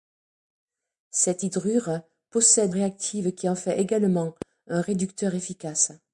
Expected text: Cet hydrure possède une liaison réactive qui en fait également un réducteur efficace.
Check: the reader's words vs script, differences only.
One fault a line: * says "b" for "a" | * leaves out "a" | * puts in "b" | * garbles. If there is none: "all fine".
* leaves out "une liaison"